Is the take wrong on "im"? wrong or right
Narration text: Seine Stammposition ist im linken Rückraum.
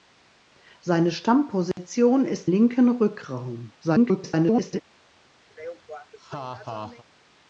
wrong